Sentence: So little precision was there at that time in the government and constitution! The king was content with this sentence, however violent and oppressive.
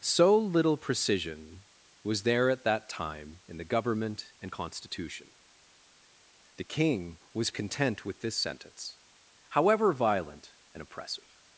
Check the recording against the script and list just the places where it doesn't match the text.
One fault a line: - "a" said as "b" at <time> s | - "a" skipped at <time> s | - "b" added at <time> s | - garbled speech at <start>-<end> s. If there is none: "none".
none